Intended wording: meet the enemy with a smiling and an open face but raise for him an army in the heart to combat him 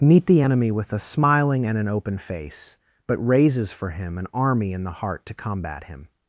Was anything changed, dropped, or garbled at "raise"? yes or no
yes